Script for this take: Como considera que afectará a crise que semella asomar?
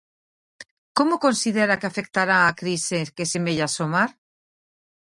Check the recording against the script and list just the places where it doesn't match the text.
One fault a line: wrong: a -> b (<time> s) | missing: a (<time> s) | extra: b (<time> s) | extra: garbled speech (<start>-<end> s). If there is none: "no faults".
no faults